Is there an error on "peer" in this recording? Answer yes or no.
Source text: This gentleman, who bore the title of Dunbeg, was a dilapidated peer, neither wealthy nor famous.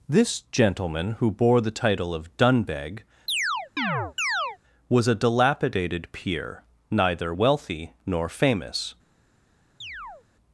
no